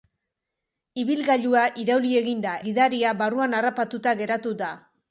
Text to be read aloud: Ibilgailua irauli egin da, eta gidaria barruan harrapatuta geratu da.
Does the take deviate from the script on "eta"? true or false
true